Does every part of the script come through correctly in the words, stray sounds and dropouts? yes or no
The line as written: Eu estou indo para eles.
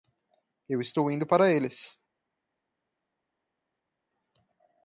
yes